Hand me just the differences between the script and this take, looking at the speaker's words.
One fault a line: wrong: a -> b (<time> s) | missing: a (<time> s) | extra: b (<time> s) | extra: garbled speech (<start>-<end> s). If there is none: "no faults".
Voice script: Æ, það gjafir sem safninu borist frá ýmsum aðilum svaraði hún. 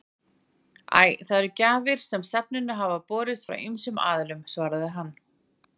extra: eru (1.4 s)
extra: hafa (2.8 s)
wrong: hún -> hann (5.0 s)